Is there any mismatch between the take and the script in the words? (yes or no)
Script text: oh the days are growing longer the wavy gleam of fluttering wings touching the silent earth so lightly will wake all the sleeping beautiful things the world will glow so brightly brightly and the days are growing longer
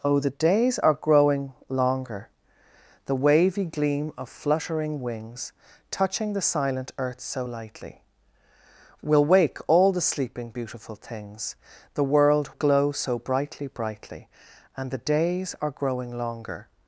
yes